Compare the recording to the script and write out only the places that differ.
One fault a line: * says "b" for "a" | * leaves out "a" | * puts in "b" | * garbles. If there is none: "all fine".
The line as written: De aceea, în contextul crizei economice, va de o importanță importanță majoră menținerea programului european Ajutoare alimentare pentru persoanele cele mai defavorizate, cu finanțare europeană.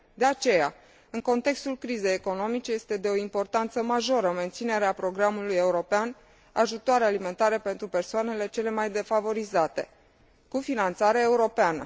* says "este" for "va"
* leaves out "importanță"